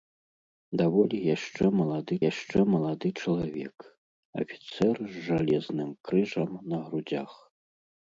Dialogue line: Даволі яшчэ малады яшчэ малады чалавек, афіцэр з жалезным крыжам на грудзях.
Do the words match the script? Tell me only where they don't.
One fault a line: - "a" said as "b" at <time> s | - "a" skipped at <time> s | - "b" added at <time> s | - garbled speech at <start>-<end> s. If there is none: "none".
none